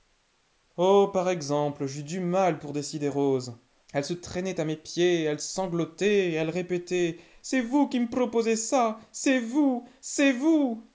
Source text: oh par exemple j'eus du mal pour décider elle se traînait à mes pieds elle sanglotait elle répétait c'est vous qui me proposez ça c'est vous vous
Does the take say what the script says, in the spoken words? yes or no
no